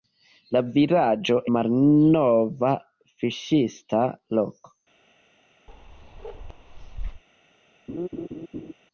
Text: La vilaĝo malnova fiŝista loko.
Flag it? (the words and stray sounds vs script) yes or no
yes